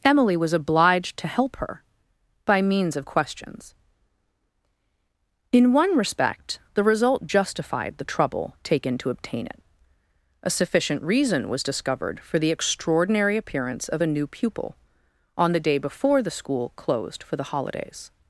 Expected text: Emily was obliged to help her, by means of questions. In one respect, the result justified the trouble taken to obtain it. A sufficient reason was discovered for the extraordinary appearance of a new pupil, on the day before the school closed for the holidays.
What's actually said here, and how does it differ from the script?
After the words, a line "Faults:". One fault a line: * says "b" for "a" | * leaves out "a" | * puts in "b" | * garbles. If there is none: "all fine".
Emily was obliged to help her, by means of questions. In one respect, the result justified the trouble taken to obtain it. A sufficient reason was discovered for the extraordinary appearance of a new pupil, on the day before the school closed for the holidays.
Faults:
all fine